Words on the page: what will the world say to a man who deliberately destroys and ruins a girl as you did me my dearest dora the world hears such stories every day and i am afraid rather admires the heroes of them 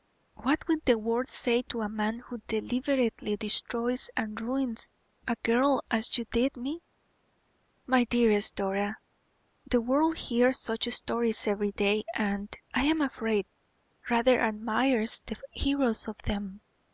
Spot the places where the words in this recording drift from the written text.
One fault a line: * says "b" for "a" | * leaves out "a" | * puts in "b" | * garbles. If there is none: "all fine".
all fine